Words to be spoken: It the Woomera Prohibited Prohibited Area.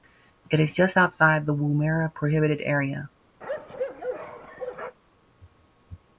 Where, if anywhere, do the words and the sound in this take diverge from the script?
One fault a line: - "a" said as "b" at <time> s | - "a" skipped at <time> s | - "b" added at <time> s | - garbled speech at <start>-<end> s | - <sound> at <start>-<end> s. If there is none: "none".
- "is just outside" added at 0.6 s
- "Prohibited" skipped at 2.6 s
- bark at 3.4-5.0 s